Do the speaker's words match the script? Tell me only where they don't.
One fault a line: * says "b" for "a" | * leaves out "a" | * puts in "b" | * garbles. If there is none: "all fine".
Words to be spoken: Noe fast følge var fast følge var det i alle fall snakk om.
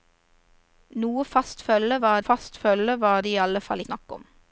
all fine